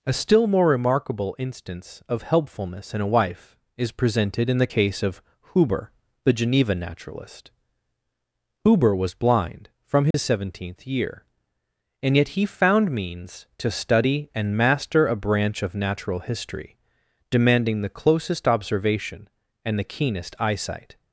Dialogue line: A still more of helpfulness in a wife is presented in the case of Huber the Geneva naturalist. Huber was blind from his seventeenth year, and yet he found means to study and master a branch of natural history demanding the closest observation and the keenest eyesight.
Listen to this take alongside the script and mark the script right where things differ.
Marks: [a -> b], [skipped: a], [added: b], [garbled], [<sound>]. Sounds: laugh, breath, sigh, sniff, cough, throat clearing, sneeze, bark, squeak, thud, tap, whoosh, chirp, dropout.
A still more [added: remarkable instance] of helpfulness in a wife is presented in the case of Huber the Geneva naturalist. Huber was blind from his [dropout] seventeenth year, and yet he found means to study and master a branch of natural history demanding the closest observation and the keenest eyesight.